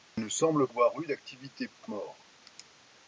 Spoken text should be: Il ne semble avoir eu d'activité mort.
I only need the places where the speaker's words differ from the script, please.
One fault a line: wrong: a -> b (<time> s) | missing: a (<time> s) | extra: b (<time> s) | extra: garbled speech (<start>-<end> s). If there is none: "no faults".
no faults